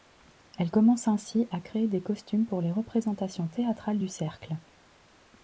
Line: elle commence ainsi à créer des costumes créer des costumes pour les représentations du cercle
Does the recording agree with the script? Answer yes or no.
no